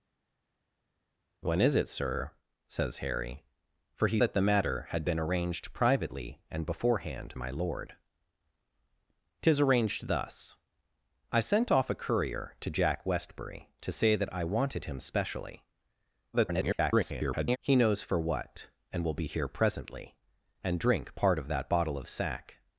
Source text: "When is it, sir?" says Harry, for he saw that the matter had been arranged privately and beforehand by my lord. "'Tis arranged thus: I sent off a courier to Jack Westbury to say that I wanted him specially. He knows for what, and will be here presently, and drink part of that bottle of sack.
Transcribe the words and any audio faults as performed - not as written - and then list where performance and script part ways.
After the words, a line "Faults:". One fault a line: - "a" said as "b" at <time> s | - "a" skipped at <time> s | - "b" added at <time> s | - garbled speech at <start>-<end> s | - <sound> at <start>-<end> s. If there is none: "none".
"When is it, sir?" says Harry, for he that the matter had been arranged privately and beforehand my lord. "'Tis arranged thus: I sent off a courier to Jack Westbury to say that I wanted him specially. [garbled] He knows for what, and will be here presently, and drink part of that bottle of sack.
Faults:
- "saw" skipped at 4.2 s
- "by" skipped at 7.3 s
- garbled speech at 16.3-17.6 s